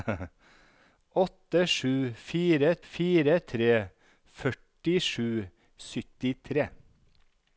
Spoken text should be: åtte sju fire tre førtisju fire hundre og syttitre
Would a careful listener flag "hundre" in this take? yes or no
yes